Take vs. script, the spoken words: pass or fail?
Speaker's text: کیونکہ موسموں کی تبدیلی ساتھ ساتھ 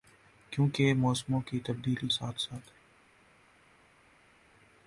pass